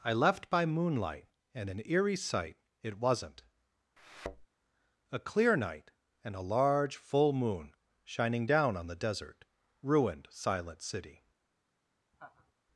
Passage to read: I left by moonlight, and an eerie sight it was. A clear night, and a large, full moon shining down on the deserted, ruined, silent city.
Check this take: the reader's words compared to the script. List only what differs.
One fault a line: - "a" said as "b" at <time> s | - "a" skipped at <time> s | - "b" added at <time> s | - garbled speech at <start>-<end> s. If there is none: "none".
- "was" said as "wasn't" at 3.0 s
- "deserted" said as "desert" at 8.9 s